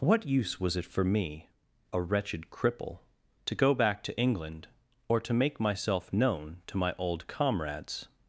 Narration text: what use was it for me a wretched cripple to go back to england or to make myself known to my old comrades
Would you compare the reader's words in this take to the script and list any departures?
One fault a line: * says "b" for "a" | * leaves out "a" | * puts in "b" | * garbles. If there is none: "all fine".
all fine